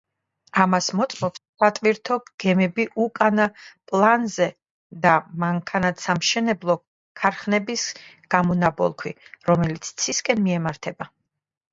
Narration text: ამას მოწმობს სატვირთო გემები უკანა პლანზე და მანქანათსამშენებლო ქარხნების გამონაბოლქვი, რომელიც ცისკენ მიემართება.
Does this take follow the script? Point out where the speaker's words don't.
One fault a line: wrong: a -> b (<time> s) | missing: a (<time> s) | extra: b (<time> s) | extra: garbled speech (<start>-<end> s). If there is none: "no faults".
no faults